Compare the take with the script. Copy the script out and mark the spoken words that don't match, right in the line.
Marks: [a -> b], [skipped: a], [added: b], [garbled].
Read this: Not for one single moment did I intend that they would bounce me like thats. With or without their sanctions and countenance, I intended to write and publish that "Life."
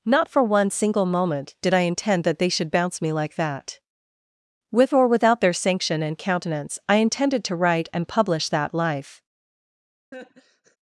Not for one single moment did I intend that they [would -> should] bounce me like [thats. -> that] With or without their [sanctions -> sanction] and countenance, I intended to write and publish that "Life."